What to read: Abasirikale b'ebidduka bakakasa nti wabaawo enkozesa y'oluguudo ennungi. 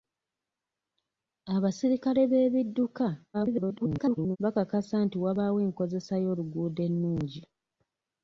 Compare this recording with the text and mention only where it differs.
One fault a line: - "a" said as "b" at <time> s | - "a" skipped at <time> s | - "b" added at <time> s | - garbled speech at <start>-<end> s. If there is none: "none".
- garbled speech at 3.3-4.4 s